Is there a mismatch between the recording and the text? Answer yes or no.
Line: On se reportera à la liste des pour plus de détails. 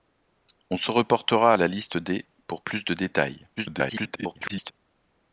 yes